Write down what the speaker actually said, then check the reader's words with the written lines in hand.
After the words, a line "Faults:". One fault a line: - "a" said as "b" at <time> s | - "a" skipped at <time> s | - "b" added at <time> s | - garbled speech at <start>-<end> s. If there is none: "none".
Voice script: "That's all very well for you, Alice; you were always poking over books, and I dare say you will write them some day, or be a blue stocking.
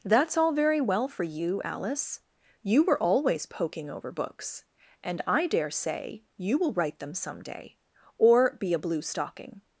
"That's all very well for you, Alice; you were always poking over books, and I dare say you will write them some day, or be a blue stocking.
Faults:
none